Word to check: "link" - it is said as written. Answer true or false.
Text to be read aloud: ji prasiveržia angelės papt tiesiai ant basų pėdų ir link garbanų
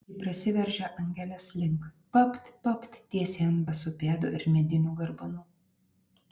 false